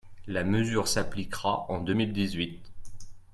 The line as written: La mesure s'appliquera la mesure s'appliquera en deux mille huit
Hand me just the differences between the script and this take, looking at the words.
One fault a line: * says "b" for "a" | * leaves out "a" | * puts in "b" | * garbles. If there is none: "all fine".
* leaves out "la mesure s'appliquera"
* puts in "dix"